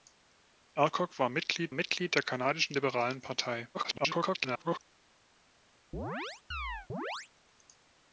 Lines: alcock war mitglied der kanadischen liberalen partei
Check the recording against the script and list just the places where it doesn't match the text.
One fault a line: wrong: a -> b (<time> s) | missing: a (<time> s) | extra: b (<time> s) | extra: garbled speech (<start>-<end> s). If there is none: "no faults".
extra: mitglied (1.7 s)
extra: garbled speech (3.7-4.8 s)